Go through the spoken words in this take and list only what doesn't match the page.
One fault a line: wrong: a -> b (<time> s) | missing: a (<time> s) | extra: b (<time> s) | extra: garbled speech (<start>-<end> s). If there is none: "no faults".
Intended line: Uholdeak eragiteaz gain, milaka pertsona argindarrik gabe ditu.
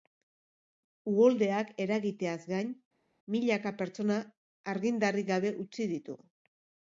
extra: utzi (5.7 s)